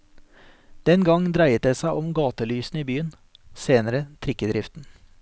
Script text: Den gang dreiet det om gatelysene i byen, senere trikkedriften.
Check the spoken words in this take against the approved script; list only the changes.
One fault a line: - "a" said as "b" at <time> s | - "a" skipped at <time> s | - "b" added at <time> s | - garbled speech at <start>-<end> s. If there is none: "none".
- "seg" added at 1.8 s